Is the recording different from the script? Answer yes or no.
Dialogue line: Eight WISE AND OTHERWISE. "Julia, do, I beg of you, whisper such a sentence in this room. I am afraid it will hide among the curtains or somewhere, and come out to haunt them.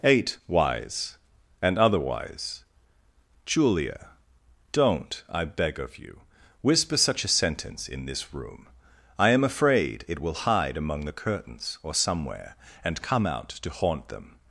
yes